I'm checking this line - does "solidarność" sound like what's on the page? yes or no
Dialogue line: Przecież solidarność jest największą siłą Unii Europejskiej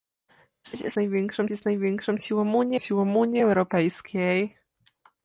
no